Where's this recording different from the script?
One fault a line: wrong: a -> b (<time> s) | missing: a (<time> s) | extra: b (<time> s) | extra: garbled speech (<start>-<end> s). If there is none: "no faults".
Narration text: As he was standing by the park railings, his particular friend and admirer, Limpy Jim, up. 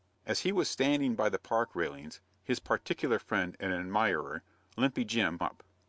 no faults